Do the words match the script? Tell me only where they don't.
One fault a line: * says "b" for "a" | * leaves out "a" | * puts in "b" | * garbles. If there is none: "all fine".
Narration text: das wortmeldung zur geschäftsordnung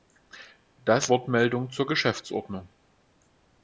all fine